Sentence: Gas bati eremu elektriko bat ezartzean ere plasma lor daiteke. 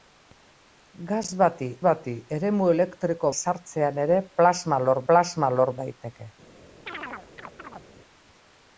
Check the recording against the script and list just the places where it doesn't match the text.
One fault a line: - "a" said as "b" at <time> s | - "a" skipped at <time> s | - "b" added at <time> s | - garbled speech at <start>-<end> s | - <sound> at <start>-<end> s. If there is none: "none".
- "bati" added at 1.9 s
- "bat" skipped at 3.3 s
- "plasma lor" added at 5.1 s
- chirp at 6.9-7.9 s